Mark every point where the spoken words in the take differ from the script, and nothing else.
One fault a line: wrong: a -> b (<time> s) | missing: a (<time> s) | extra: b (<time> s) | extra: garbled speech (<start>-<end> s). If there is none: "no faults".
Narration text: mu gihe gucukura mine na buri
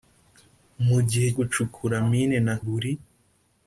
no faults